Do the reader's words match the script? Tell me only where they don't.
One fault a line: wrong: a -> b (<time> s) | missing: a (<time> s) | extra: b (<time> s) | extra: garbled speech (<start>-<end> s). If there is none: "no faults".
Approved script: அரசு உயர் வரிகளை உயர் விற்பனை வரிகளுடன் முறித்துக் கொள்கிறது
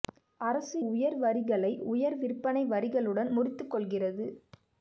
no faults